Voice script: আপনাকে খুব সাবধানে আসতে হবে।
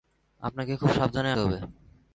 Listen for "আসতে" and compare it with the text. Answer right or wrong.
wrong